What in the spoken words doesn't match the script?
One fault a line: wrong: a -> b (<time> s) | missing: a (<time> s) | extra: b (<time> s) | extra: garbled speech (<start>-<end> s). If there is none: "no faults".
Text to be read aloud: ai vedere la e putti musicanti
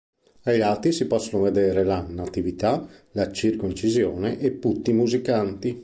extra: lati si possono (0.6 s)
extra: natività la circoncisione (2.1 s)